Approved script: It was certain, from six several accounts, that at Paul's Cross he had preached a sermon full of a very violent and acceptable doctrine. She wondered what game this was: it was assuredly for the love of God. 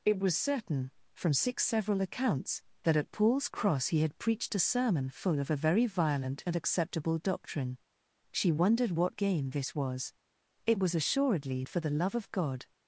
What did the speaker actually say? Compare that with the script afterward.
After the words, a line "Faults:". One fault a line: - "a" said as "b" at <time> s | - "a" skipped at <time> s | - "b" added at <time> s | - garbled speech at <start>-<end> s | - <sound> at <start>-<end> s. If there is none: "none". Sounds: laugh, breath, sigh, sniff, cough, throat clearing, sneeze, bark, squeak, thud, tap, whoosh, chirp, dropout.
It was certain, from six several accounts, that at Paul's Cross he had preached a sermon full of a very violent and acceptable doctrine. She wondered what game this was: it was assuredly for the love of God.
Faults:
none